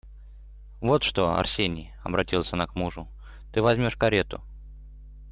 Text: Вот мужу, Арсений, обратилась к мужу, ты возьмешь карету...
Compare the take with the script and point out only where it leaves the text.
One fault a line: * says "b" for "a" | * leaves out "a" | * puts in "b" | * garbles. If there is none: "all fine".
* says "что" for "мужу"
* puts in "она"